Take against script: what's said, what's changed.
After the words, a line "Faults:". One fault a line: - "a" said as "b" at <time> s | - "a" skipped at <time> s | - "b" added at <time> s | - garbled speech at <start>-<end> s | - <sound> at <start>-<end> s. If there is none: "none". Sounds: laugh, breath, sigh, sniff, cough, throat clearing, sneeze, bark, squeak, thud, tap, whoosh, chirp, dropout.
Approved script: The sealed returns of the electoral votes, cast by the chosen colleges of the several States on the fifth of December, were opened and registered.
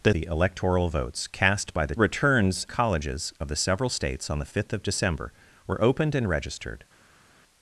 The the electoral votes, cast by the returns colleges of the several States on the fifth of December, were opened and registered.
Faults:
- "sealed returns of" skipped at 0.1 s
- "chosen" said as "returns" at 2.0 s